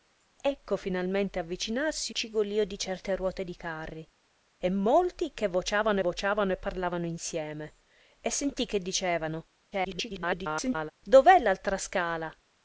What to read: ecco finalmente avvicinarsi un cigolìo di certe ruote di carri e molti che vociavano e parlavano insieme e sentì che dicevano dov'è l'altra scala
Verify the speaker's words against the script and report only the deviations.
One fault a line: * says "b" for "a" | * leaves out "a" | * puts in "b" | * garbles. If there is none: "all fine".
* leaves out "un"
* puts in "vociavano"
* garbles